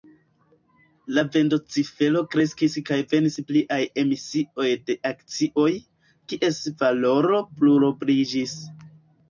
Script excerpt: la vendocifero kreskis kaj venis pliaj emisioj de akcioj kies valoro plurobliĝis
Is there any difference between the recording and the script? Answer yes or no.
no